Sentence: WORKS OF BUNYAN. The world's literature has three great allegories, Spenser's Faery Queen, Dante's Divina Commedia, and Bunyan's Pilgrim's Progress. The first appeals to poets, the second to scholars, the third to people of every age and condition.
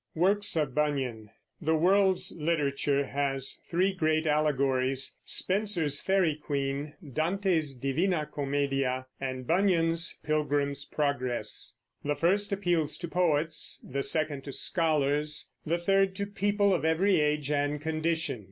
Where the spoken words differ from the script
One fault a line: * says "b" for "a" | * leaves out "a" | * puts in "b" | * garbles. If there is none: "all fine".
all fine